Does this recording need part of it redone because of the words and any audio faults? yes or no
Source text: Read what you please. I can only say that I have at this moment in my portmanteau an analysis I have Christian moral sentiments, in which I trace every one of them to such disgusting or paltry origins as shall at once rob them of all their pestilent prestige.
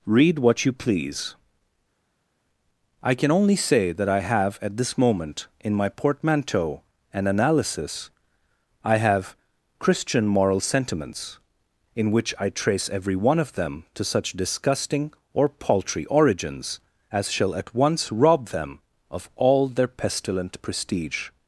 no